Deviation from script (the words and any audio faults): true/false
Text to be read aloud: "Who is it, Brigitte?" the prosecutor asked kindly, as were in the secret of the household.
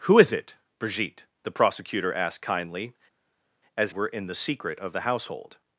false